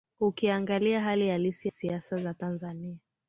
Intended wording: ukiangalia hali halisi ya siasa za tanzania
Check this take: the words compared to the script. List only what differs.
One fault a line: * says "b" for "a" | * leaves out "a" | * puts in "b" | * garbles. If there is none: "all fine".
* leaves out "ya"